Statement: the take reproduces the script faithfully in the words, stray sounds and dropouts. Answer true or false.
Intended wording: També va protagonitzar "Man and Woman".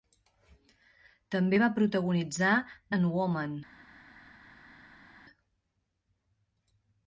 false